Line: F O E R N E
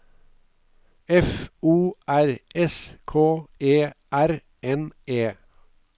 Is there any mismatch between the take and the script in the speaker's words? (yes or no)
yes